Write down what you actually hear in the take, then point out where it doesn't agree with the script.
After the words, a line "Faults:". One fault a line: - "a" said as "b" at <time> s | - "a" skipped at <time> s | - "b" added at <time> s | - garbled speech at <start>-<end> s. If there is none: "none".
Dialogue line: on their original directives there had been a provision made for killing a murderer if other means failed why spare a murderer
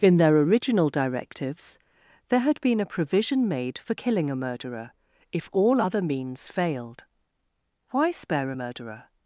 in their original directives there had been a provision made for killing a murderer if all other means failed why spare a murderer
Faults:
- "on" said as "in" at 0.0 s
- "all" added at 5.5 s